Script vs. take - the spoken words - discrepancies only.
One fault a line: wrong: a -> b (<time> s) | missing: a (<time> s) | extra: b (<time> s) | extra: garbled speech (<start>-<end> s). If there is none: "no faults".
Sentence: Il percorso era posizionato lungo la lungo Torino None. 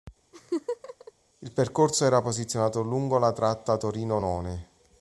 wrong: lungo -> tratta (3.3 s)